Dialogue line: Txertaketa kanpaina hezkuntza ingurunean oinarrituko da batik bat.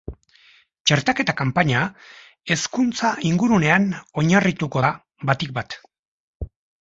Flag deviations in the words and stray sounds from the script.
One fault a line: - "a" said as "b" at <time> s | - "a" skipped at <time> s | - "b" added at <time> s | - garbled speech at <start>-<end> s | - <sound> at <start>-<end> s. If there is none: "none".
none